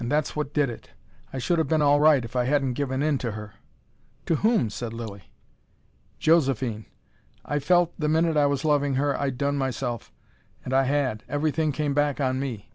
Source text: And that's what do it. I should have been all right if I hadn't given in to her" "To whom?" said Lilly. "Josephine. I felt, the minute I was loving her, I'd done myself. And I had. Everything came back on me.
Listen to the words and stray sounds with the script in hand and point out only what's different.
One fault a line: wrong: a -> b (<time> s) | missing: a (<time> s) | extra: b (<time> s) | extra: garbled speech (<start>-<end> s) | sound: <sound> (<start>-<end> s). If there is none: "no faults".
wrong: do -> did (0.5 s)